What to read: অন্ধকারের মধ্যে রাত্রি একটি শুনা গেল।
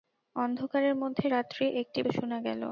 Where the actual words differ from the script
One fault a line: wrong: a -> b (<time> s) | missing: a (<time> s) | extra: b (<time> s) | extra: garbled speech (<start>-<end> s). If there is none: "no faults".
no faults